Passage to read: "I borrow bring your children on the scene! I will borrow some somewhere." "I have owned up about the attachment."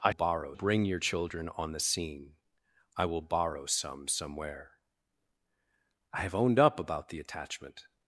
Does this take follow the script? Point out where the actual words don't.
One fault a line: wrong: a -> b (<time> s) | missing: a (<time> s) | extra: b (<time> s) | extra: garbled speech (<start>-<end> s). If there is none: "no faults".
no faults